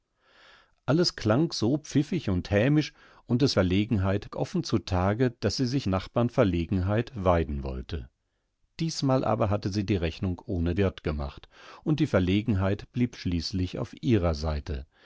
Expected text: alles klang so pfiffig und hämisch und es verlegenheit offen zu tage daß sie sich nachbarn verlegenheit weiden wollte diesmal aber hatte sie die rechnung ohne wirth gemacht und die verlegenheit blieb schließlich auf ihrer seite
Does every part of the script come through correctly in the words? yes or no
yes